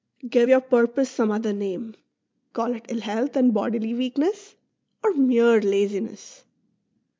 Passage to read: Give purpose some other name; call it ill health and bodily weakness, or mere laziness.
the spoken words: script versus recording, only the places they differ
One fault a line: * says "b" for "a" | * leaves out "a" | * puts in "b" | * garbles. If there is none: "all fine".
* puts in "your"